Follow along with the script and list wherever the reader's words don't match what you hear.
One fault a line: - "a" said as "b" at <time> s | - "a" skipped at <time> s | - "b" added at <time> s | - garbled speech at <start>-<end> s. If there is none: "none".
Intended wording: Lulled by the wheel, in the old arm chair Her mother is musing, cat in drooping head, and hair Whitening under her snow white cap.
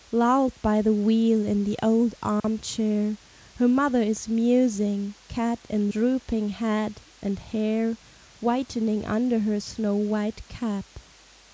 none